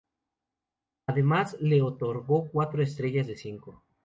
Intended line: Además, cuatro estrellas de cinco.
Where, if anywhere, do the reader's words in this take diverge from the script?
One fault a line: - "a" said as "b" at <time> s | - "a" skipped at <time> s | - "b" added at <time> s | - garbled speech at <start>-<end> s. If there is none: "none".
- "le otorgó" added at 1.6 s